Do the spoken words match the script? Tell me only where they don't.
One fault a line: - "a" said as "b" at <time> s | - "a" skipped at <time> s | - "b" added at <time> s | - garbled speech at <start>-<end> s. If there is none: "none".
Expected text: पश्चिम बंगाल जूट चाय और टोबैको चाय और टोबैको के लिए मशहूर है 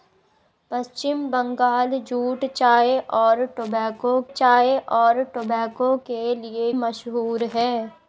none